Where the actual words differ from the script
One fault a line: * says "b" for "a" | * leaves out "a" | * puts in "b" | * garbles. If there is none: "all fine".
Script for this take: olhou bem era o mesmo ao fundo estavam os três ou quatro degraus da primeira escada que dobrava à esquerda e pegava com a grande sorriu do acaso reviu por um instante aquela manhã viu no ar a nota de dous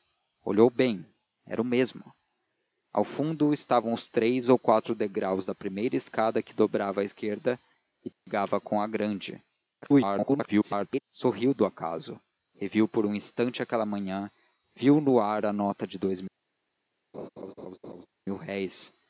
* garbles